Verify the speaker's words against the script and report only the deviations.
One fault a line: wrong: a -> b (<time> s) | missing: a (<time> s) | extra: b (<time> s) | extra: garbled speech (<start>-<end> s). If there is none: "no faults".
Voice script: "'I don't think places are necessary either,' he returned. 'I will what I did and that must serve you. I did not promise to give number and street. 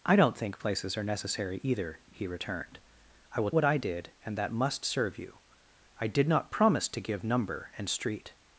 no faults